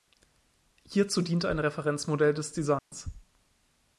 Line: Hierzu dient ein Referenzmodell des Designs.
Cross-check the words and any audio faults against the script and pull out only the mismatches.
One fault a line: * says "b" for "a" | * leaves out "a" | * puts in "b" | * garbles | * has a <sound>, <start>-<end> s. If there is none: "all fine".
* has a dropout, 2.8-2.9 s